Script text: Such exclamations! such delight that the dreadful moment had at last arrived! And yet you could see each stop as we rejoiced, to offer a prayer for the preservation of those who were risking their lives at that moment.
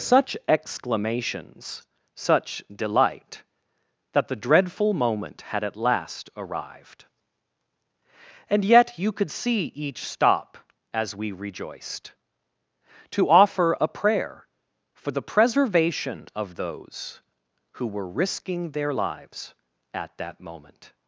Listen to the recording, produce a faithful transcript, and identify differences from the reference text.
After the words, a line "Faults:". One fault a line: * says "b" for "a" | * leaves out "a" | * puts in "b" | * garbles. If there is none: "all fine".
Such exclamations! such delight that the dreadful moment had at last arrived! And yet you could see each stop as we rejoiced, to offer a prayer for the preservation of those who were risking their lives at that moment.
Faults:
all fine